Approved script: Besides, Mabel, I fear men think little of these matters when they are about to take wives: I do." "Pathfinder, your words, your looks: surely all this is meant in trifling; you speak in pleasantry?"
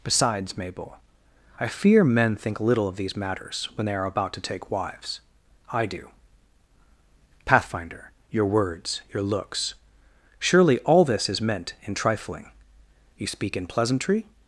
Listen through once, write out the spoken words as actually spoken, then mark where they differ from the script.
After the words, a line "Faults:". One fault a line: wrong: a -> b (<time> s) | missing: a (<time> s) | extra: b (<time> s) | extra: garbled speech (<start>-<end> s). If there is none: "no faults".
Besides, Mabel, I fear men think little of these matters when they are about to take wives: I do." "Pathfinder, your words, your looks: surely all this is meant in trifling; you speak in pleasantry?"
Faults:
no faults